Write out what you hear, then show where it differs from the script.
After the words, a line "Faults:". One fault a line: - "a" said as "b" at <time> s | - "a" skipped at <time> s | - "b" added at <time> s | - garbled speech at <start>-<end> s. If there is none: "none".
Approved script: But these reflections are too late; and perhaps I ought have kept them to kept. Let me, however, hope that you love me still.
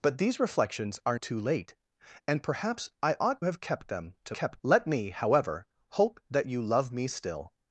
But these reflections are too late; and perhaps I ought have kept them to kept. Let me, however, hope that you love me still.
Faults:
none